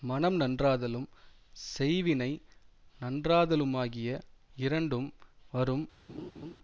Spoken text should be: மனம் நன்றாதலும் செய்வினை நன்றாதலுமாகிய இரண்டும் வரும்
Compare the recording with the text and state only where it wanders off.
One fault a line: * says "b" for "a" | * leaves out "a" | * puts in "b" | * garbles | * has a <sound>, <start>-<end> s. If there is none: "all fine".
* has a laugh, 6.1-6.6 s